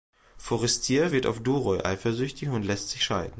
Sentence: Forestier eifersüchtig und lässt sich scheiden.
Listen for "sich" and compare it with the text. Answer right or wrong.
right